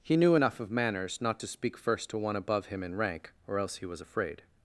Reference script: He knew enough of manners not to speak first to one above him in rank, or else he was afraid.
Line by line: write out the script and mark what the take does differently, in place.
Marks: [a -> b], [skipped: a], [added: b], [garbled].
He knew enough of manners not to speak first to one above him in rank, or else he was afraid.